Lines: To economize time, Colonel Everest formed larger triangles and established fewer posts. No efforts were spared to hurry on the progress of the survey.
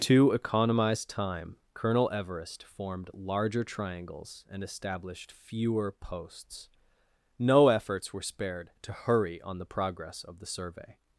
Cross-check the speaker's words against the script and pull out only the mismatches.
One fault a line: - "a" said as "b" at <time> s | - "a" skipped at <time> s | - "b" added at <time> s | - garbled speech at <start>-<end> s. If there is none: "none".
none